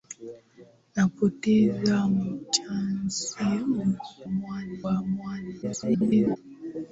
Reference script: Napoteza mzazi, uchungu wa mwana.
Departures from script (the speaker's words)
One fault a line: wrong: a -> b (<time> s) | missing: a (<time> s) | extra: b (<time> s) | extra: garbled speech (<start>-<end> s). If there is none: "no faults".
wrong: uchungu -> mwana (4.3 s)
extra: garbled speech (5.6-6.4 s)